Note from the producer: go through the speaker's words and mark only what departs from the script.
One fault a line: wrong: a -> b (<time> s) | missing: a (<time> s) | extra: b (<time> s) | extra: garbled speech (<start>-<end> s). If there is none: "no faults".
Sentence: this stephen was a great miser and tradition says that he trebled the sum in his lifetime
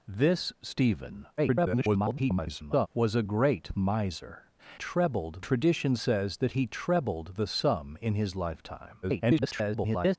extra: garbled speech (1.4-2.9 s)
wrong: and -> trebled (4.7 s)
extra: garbled speech (9.0-10.2 s)